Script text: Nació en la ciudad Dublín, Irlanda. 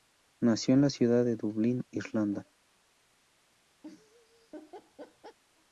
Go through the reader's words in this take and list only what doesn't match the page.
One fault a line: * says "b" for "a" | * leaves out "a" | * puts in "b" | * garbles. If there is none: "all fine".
* puts in "de"